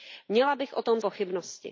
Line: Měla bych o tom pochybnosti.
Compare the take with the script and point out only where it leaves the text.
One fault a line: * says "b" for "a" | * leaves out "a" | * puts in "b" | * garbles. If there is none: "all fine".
all fine